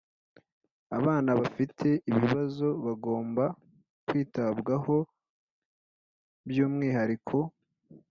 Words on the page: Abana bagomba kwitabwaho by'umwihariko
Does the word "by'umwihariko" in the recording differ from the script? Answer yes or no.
no